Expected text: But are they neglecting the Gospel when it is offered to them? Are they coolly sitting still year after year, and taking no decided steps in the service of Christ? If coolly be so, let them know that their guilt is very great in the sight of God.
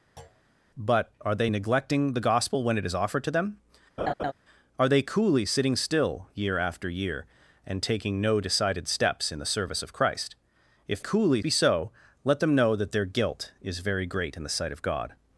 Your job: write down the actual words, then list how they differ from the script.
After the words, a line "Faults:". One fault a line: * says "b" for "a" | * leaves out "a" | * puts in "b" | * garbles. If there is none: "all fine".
But are they neglecting the Gospel when it is offered to them? Are they coolly sitting still year after year, and taking no decided steps in the service of Christ? If coolly be so, let them know that their guilt is very great in the sight of God.
Faults:
all fine